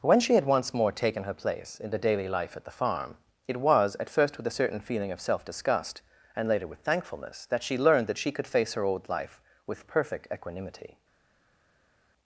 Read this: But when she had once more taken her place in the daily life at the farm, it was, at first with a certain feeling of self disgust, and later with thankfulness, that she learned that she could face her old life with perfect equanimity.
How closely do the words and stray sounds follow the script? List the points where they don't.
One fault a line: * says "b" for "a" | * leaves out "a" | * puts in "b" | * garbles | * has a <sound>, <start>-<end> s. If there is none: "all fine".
* leaves out "But"